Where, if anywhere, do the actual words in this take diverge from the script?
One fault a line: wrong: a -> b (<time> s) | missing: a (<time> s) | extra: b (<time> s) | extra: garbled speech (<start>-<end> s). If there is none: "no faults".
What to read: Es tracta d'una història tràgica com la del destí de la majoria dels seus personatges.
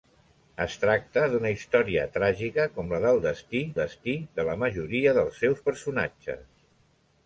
extra: destí (3.8 s)